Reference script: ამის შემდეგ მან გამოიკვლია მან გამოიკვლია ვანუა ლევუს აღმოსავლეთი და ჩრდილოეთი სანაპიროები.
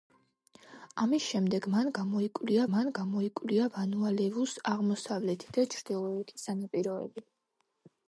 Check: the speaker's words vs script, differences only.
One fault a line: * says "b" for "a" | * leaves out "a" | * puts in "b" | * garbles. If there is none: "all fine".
all fine